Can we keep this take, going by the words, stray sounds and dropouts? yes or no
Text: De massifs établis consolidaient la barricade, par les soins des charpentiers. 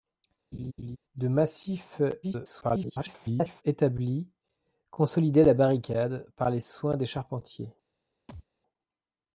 no